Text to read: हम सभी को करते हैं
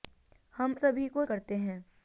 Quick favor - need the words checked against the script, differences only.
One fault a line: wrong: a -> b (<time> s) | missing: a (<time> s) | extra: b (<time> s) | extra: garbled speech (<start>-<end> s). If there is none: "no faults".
no faults